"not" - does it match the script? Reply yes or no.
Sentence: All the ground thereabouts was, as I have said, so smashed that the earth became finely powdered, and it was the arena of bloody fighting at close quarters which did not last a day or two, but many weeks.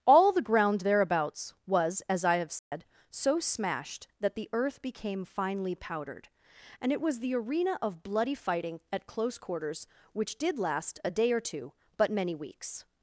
no